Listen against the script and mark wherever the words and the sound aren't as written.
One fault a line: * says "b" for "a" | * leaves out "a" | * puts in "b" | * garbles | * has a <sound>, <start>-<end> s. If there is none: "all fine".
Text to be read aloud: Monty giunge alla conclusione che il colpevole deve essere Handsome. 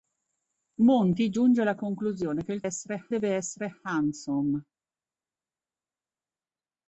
* says "essere" for "colpevole"